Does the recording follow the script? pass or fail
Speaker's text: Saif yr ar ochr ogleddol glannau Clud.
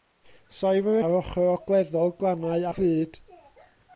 pass